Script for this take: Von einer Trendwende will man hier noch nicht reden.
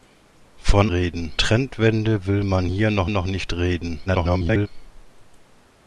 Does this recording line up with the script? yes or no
no